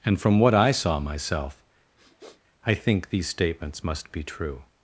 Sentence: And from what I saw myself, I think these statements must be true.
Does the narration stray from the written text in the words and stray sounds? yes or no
yes